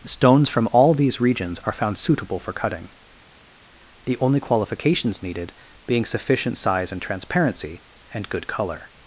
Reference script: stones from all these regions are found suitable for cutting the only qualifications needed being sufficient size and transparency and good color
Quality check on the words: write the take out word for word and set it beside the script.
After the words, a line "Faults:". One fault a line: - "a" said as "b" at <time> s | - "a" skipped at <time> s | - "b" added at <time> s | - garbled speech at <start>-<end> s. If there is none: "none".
stones from all these regions are found suitable for cutting the only qualifications needed being sufficient size and transparency and good color
Faults:
none